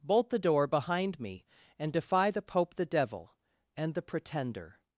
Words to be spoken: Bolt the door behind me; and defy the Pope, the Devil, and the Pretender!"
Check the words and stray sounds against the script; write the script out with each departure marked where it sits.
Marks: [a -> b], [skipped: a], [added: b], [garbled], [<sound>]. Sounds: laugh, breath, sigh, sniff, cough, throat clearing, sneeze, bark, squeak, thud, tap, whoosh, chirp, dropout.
Bolt the door behind me; and defy the Pope, the Devil, and the Pretender!"